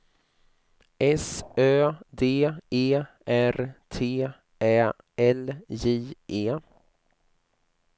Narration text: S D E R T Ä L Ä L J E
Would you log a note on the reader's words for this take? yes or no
yes